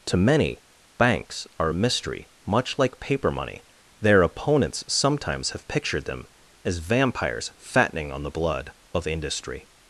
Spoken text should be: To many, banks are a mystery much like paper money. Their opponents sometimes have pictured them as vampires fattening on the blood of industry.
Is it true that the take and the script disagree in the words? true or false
false